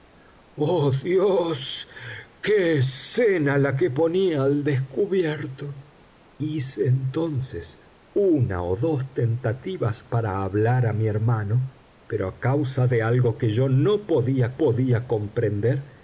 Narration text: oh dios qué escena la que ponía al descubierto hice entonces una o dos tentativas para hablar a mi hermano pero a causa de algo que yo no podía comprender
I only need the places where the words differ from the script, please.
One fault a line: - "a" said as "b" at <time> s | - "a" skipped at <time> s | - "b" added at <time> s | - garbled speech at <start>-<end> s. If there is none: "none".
- "podía" added at 14.6 s